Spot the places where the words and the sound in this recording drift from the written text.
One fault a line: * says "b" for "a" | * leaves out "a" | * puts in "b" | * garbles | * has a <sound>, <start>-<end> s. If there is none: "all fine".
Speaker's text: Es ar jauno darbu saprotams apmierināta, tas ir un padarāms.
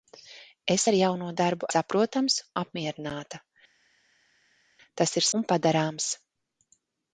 all fine